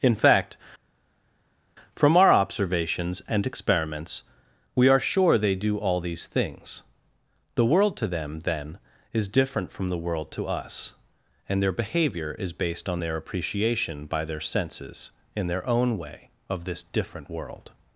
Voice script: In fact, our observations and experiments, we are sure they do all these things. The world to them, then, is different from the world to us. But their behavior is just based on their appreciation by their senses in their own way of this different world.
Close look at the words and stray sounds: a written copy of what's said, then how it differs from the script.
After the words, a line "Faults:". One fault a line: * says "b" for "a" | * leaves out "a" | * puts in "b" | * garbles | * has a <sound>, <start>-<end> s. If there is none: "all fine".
In fact, from our observations and experiments, we are sure they do all these things. The world to them, then, is different from the world to us. And their behavior is based on their appreciation by their senses in their own way of this different world.
Faults:
* puts in "from"
* says "And" for "But"
* leaves out "just"